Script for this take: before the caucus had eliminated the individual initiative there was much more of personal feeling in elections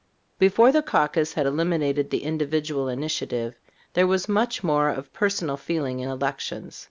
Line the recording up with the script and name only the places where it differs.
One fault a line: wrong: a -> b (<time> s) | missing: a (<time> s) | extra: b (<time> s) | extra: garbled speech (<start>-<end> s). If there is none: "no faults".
no faults